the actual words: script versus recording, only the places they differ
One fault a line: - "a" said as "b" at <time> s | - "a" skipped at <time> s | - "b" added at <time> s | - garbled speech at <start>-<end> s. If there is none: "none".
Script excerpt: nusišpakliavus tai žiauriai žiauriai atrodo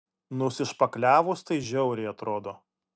- "žiauriai" skipped at 2.1 s